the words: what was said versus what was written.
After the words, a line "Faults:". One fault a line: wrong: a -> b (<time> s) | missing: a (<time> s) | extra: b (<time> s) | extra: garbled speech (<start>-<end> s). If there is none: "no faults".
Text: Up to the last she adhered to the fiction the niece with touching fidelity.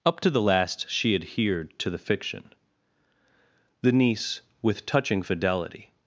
Up to the last she adhered to the fiction the niece with touching fidelity.
Faults:
no faults